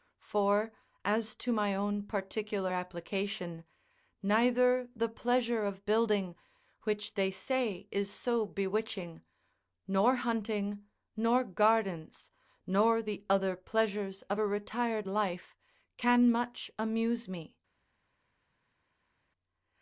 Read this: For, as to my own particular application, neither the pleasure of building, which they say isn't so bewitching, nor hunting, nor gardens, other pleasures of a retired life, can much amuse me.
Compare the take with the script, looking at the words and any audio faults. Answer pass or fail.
fail